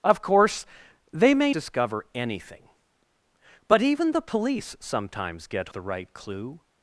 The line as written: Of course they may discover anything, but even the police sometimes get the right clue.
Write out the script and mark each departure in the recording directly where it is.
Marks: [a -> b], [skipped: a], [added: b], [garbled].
Of course they may discover anything, but even the police sometimes get the right clue.